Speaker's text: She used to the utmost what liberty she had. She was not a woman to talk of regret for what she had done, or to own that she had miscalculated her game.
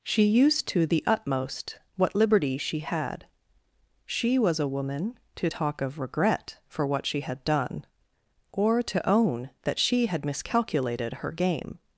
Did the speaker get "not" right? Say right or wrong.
wrong